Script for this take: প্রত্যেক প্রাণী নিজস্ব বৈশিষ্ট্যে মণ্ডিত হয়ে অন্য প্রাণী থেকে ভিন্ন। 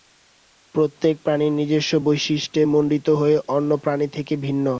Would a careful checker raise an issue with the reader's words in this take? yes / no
no